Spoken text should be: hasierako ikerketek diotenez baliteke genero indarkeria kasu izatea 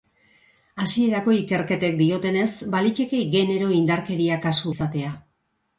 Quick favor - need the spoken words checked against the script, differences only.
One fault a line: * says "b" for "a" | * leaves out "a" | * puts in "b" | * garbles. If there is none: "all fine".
all fine